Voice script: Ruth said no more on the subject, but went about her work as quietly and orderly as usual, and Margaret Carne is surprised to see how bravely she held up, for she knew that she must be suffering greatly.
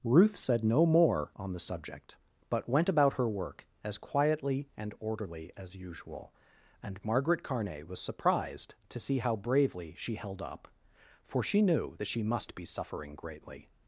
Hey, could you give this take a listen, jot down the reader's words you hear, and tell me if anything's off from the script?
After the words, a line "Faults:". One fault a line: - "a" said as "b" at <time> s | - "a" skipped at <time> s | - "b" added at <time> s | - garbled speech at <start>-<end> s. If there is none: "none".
Ruth said no more on the subject, but went about her work as quietly and orderly as usual, and Margaret Carne was surprised to see how bravely she held up, for she knew that she must be suffering greatly.
Faults:
- "is" said as "was" at 7.9 s